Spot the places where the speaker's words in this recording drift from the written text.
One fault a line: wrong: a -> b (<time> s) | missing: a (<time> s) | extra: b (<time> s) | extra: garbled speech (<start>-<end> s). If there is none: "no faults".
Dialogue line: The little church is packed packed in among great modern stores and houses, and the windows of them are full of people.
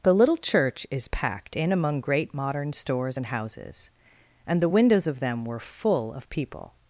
missing: packed (1.6 s)
wrong: are -> were (5.5 s)